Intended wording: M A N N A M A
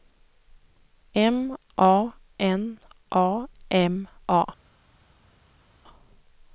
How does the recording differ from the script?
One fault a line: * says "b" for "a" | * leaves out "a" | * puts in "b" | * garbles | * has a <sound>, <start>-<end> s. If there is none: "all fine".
* leaves out "N"